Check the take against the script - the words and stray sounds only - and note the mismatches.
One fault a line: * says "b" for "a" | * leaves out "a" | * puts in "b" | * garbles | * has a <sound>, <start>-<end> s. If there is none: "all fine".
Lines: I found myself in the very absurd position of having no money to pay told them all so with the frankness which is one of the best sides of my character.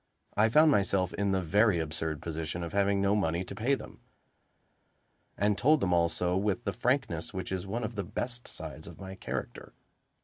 * puts in "them and"